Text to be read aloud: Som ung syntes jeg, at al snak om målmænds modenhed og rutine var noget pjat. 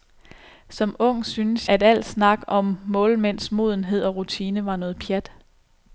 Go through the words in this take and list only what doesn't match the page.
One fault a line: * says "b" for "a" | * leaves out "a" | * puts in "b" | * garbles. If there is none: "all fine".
* leaves out "jeg"